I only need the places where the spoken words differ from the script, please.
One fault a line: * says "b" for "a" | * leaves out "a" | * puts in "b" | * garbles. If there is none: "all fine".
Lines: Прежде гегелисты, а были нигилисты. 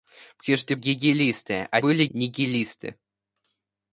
all fine